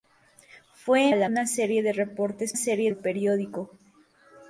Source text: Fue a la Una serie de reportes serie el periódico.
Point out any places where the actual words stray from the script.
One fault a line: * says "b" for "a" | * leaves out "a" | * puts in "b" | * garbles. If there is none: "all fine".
all fine